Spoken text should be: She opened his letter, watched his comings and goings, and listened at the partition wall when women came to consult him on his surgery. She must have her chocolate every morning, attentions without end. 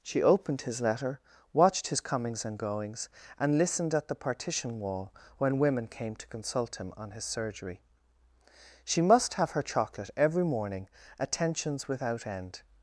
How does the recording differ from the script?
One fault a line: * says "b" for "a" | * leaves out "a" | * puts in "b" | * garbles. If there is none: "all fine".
all fine